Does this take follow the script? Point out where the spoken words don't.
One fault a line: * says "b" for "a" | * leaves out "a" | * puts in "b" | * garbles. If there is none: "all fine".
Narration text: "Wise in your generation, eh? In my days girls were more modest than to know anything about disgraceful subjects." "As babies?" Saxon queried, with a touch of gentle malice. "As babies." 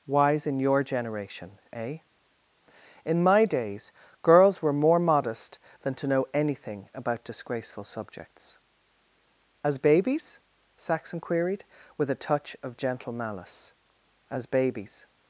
all fine